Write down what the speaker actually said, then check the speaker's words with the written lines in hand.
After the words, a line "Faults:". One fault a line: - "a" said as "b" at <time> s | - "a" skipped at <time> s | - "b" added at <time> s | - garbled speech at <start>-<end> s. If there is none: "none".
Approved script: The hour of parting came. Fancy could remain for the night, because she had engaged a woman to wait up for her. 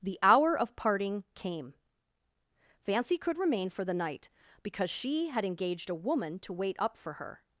The hour of parting came. Fancy could remain for the night, because she had engaged a woman to wait up for her.
Faults:
none